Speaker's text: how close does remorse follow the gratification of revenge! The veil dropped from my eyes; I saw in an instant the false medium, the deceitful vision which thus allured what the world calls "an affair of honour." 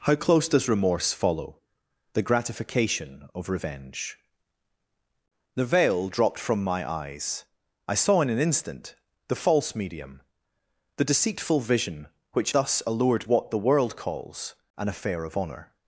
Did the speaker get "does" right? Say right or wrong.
right